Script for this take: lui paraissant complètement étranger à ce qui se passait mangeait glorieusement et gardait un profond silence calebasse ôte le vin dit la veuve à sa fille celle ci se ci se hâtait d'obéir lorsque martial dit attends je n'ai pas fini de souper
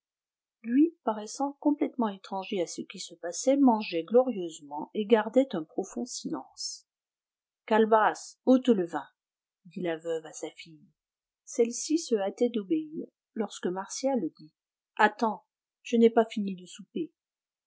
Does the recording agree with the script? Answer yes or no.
no